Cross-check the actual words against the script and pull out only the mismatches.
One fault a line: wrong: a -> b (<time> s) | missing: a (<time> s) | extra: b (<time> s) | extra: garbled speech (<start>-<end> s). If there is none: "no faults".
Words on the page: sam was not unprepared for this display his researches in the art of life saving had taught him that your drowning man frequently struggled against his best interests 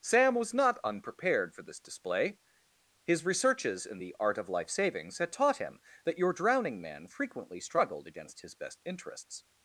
wrong: saving -> savings (4.7 s)